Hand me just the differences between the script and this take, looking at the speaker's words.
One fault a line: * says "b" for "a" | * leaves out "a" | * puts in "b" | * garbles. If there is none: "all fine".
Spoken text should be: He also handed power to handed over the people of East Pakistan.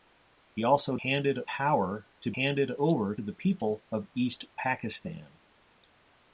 all fine